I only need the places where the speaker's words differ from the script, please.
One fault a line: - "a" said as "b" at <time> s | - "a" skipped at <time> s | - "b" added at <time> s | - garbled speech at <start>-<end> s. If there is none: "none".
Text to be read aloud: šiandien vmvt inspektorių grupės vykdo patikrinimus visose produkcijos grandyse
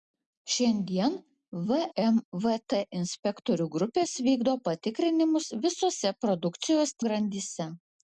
none